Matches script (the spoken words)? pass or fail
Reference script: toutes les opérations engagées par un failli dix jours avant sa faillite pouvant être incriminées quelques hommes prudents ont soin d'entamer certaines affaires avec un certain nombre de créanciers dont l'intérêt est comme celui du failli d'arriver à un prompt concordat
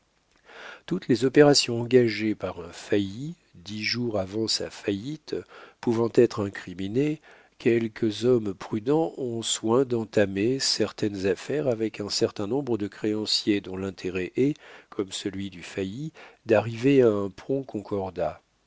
pass